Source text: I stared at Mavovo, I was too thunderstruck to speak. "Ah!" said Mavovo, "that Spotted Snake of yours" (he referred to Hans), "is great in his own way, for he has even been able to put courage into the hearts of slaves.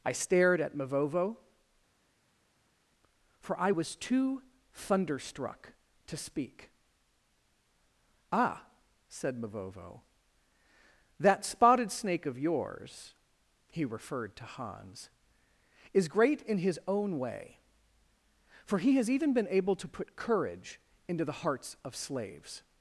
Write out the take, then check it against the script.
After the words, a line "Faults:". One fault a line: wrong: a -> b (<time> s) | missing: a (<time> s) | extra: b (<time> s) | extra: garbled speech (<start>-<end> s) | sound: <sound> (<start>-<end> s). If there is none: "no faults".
I stared at Mavovo, for I was too thunderstruck to speak. "Ah!" said Mavovo, "that Spotted Snake of yours" (he referred to Hans), "is great in his own way, for he has even been able to put courage into the hearts of slaves.
Faults:
extra: for (3.4 s)